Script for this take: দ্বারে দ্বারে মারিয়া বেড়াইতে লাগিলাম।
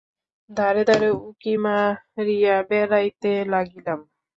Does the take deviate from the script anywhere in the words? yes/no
yes